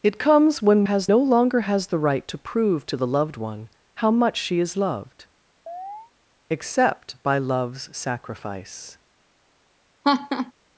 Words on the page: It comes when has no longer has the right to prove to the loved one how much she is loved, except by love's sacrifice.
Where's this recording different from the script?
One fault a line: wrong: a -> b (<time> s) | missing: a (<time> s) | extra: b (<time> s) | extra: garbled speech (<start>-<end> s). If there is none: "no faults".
no faults